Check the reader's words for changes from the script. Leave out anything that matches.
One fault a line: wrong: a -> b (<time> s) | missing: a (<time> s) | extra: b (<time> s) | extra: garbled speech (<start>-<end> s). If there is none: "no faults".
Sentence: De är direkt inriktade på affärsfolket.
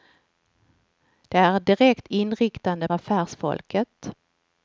missing: på (2.9 s)